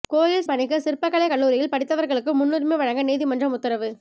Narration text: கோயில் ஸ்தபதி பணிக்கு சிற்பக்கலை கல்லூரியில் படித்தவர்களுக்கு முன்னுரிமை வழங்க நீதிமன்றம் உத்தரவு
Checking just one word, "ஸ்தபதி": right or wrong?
wrong